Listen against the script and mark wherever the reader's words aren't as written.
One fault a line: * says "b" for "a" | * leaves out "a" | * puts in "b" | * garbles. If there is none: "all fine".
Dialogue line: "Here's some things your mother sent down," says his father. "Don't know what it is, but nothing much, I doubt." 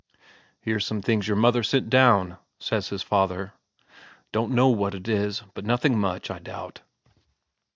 all fine